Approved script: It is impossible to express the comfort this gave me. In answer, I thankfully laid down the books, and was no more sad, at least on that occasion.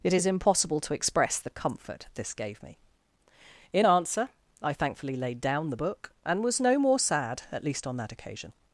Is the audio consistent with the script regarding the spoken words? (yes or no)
no